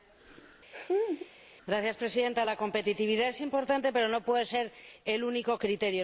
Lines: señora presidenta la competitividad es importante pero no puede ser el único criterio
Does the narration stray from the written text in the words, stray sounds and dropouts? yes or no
yes